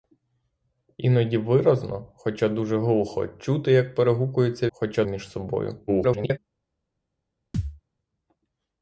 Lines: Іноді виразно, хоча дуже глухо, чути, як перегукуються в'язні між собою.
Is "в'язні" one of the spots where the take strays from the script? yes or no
yes